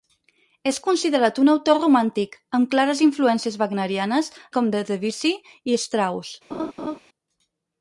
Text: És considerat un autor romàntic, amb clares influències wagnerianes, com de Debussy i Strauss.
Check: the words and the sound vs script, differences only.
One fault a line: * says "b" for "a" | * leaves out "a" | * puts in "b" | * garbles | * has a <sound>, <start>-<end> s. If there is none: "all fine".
* has a laugh, 6.5-7.0 s